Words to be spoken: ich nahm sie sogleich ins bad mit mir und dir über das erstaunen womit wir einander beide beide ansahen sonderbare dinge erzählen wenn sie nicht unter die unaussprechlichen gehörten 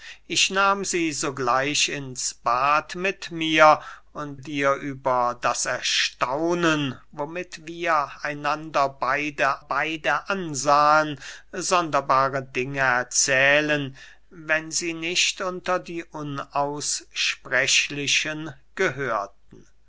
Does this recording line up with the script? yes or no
yes